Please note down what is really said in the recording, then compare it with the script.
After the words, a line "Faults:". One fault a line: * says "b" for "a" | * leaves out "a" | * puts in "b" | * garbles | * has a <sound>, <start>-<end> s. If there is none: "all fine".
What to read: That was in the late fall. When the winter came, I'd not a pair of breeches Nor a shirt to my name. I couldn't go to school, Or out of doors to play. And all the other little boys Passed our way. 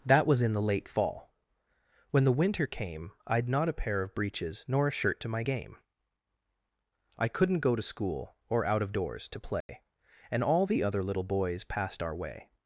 That was in the late fall. When the winter came, I'd not a pair of breeches Nor a shirt to my game. I couldn't go to school, Or out of doors to play. And all the other little boys Passed our way.
Faults:
* says "game" for "name"
* has a dropout, 9.6-9.7 s